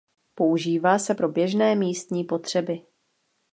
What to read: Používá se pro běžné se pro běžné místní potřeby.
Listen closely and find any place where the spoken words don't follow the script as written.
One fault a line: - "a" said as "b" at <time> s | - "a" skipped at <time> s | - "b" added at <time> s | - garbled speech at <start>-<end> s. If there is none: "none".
- "se pro běžné" skipped at 1.8 s